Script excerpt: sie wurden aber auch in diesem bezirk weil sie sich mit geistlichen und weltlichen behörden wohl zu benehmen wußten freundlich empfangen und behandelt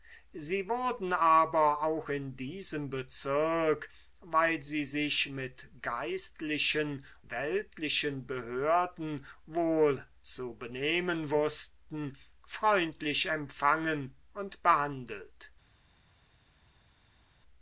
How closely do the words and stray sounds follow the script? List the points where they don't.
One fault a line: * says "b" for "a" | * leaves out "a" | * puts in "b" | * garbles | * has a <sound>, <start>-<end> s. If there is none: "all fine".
* leaves out "und"